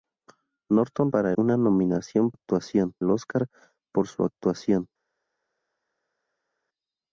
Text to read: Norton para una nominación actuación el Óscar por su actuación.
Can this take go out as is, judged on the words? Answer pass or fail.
pass